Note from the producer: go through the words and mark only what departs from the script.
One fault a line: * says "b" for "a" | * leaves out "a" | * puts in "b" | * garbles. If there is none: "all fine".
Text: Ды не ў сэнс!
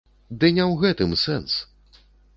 * puts in "гэтым"